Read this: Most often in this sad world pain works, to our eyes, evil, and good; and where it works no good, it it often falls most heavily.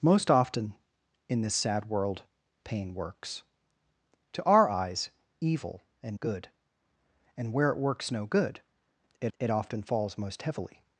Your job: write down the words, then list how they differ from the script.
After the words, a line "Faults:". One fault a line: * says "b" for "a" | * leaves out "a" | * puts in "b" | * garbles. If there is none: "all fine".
Most often in this sad world pain works, to our eyes, evil, and good; and where it works no good, it it often falls most heavily.
Faults:
all fine